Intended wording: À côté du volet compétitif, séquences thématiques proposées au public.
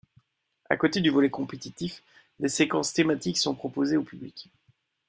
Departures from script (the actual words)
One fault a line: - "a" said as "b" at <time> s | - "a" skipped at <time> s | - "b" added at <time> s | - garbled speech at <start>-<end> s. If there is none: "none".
- "des" added at 2.4 s
- "sont" added at 3.4 s